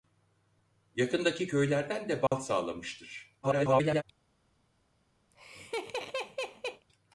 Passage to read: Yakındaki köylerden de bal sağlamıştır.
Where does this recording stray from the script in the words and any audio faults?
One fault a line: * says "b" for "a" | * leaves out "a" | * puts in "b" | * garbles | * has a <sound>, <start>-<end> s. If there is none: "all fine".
* has a dropout, 2.3-2.3 s
* garbles
* has a laugh, 5.3-6.9 s